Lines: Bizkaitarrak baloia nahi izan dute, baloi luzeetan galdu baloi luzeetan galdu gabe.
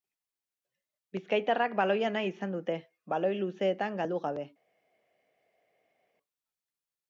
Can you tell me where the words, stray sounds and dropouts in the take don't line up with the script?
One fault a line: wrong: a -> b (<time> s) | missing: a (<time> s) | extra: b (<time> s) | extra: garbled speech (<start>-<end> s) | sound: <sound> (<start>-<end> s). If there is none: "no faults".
missing: baloi luzeetan galdu (4.2 s)